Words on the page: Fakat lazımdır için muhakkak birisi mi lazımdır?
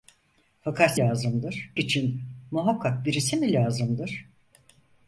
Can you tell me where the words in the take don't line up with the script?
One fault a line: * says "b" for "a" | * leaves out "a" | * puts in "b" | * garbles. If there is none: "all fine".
all fine